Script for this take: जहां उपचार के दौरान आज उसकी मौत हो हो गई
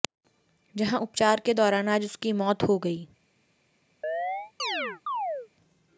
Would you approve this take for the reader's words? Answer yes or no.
no